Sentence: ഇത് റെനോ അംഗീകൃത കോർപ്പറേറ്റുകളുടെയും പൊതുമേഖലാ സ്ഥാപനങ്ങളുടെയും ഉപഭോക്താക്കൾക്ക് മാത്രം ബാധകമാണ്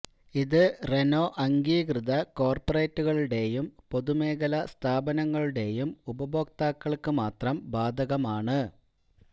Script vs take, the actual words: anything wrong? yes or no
no